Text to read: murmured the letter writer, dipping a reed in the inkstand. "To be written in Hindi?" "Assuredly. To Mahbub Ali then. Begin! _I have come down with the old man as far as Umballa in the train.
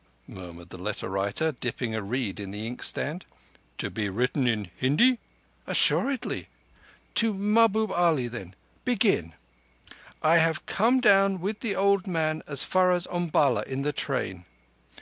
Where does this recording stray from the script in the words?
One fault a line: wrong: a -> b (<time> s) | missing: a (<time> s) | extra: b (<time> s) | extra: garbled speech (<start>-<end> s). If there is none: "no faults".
no faults